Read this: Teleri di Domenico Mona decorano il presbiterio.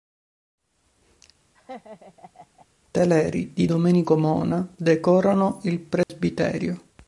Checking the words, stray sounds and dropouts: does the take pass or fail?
fail